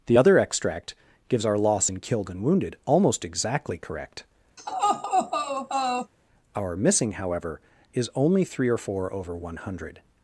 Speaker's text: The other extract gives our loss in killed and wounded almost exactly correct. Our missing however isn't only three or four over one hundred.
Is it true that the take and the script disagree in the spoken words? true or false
true